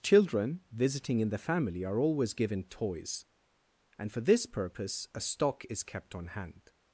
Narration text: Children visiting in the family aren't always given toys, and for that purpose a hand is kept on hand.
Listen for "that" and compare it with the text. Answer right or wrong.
wrong